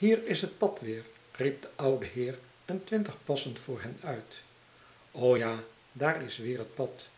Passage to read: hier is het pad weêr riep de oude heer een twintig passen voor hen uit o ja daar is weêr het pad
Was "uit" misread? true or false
false